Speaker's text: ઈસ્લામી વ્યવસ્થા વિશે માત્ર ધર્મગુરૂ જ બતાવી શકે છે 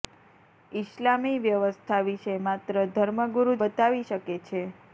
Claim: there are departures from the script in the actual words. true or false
true